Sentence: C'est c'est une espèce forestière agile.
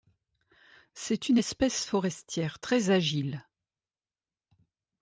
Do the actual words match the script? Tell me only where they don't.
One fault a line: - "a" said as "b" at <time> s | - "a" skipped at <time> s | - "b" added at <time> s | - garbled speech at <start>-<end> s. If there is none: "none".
- "c'est" skipped at 1.3 s
- "très" added at 2.6 s